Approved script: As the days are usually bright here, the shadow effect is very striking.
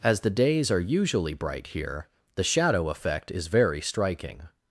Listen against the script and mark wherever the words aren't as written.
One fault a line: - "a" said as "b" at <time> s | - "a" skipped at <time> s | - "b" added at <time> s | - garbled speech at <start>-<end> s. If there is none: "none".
none